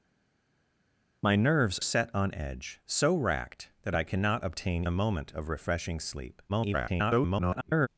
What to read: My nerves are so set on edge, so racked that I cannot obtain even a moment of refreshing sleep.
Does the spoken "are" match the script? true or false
false